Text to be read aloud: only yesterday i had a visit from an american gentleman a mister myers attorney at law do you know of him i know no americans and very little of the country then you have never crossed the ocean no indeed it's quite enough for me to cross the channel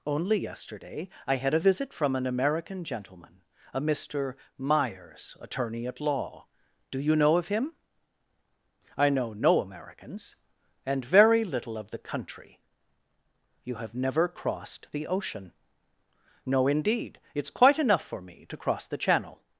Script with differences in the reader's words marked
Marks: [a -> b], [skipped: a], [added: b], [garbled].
only yesterday i had a visit from an american gentleman a mister myers attorney at law do you know of him i know no americans and very little of the country [skipped: then] you have never crossed the ocean no indeed it's quite enough for me to cross the channel